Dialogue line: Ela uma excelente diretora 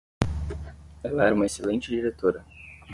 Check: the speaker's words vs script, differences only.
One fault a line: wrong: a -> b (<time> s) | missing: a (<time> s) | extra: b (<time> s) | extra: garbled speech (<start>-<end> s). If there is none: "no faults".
extra: era (1.2 s)